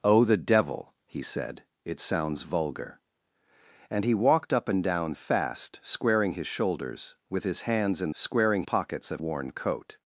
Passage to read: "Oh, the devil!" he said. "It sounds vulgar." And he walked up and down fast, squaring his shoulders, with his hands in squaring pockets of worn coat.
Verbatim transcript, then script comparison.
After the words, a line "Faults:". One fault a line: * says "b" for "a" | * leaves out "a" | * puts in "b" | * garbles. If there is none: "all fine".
"Oh, the devil!" he said. "It sounds vulgar." And he walked up and down fast, squaring his shoulders, with his hands in squaring pockets of worn coat.
Faults:
all fine